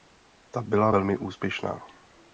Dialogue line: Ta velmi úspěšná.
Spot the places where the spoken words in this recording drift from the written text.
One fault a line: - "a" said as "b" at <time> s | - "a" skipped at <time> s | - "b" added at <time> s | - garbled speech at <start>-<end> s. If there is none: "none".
- "byla" added at 0.6 s